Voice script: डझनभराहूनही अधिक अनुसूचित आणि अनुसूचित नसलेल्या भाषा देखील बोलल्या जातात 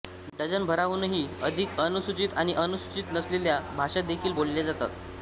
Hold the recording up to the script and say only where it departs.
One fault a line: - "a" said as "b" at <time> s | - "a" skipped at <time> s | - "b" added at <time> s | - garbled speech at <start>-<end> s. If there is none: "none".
none